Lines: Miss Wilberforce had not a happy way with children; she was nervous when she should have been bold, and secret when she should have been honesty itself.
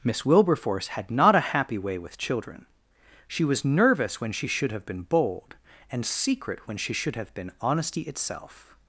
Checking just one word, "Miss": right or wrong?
right